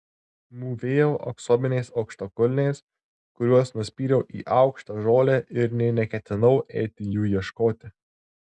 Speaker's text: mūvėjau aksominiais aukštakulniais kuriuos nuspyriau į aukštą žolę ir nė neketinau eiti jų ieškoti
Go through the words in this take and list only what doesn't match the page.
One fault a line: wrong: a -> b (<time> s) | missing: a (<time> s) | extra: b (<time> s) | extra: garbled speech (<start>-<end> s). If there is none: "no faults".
no faults